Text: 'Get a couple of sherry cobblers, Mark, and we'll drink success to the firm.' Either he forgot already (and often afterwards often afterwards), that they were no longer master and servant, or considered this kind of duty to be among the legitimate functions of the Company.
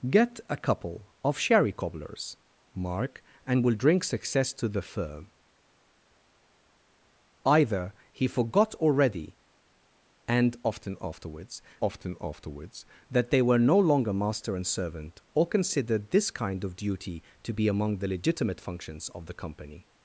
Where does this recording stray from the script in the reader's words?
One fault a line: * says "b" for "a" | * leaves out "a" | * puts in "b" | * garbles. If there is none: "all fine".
all fine